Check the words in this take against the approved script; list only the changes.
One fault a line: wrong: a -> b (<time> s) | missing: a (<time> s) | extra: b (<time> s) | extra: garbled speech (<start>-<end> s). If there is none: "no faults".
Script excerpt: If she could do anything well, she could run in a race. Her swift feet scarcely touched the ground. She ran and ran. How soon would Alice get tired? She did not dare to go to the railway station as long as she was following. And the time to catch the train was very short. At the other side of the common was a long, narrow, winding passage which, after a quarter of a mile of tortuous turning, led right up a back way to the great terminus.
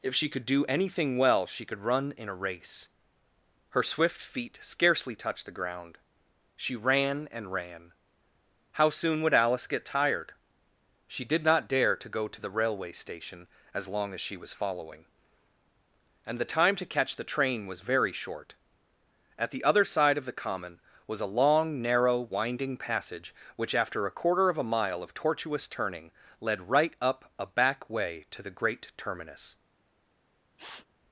no faults